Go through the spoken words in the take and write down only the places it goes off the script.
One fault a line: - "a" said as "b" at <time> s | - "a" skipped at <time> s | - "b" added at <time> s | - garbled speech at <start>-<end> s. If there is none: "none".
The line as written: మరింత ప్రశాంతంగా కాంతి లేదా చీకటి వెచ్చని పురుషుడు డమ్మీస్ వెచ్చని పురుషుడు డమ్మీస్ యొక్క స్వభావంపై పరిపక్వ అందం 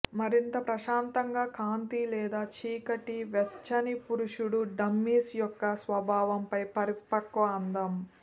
- "వెచ్చని పురుషుడు డమ్మీస్" skipped at 5.3 s